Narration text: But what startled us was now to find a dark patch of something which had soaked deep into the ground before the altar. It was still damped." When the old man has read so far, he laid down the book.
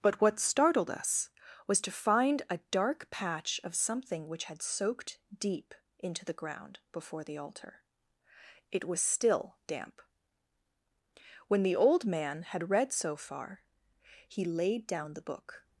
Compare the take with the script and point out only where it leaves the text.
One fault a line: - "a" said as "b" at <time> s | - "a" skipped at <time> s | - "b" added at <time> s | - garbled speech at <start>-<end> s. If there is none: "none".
- "now" skipped at 1.8 s
- "damped" said as "damp" at 9.7 s
- "has" said as "had" at 12.4 s